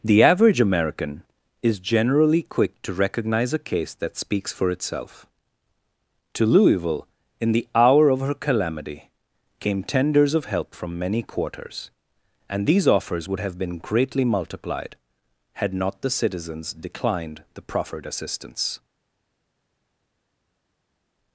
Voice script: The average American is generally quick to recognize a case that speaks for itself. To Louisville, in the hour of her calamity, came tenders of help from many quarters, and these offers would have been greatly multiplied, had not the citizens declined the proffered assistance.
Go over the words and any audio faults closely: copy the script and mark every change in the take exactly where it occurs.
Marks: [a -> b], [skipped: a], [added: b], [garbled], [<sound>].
The average American is generally quick to recognize a case that speaks for itself. To Louisville, in the hour of her calamity, came tenders of help from many quarters, and these offers would have been greatly multiplied, had not the citizens declined the proffered assistance.